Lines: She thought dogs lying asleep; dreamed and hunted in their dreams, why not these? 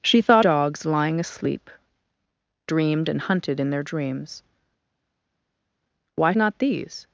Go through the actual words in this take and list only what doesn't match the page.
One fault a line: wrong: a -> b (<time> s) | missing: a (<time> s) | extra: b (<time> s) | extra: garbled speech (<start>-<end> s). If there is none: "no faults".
no faults